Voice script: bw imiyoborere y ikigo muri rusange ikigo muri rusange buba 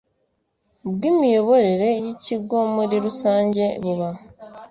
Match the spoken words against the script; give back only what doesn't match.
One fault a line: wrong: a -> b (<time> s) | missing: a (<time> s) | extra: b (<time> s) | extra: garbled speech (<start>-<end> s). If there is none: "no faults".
missing: ikigo muri rusange (3.6 s)